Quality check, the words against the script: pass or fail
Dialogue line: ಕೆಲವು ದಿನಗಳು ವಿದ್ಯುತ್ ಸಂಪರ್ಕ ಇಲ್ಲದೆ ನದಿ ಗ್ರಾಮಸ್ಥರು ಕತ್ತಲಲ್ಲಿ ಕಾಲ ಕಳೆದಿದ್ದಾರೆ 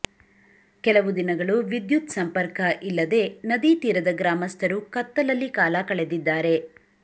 fail